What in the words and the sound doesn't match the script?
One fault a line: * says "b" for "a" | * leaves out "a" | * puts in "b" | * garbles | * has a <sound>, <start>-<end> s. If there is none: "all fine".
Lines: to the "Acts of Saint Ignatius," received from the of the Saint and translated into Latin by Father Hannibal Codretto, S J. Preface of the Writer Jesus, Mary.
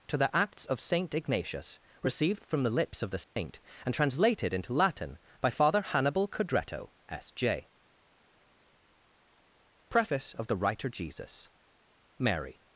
* puts in "lips"
* has a dropout, 3.2-3.4 s